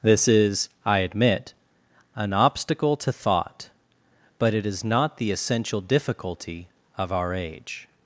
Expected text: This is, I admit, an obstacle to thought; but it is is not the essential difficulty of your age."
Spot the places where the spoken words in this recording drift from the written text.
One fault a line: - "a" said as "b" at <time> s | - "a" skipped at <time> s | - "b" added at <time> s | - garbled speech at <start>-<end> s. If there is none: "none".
- "is" skipped at 4.8 s
- "your" said as "our" at 7.1 s